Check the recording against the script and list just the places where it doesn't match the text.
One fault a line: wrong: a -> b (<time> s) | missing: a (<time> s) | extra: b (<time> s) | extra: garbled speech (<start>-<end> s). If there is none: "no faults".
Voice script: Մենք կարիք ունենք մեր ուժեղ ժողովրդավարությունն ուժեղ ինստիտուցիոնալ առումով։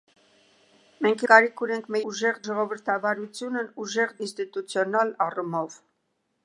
no faults